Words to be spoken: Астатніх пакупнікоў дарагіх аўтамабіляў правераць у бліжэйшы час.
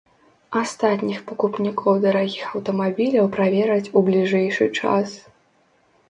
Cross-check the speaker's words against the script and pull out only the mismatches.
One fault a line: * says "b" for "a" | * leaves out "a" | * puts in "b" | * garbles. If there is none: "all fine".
all fine